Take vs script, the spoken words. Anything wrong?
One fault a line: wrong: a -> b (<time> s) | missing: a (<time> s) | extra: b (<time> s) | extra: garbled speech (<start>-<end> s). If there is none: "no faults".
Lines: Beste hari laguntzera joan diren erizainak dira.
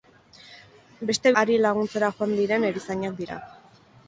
no faults